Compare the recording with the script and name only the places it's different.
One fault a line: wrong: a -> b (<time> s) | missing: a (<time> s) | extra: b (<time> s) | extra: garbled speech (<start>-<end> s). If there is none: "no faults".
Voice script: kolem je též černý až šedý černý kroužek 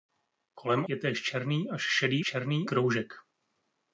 no faults